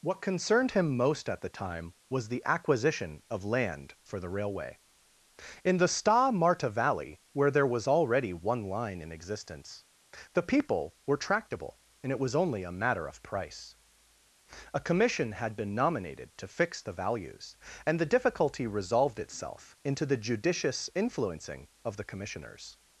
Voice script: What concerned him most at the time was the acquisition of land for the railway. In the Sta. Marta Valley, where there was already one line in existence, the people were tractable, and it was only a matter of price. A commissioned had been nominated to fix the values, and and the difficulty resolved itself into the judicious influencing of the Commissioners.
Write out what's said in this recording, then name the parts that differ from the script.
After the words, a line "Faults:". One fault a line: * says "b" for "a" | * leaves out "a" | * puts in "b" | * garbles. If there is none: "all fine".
What concerned him most at the time was the acquisition of land for the railway. In the Sta. Marta Valley, where there was already one line in existence, the people were tractable, and it was only a matter of price. A commission had been nominated to fix the values, and the difficulty resolved itself into the judicious influencing of the Commissioners.
Faults:
* says "commission" for "commissioned"
* leaves out "and"